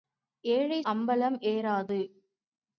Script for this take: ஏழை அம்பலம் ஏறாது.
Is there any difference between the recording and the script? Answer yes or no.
no